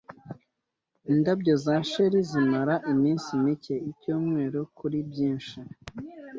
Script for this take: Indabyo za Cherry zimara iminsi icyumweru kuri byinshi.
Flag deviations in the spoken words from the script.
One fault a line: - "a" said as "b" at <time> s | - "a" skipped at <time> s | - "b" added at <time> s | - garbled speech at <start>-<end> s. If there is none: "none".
- "mike" added at 3.4 s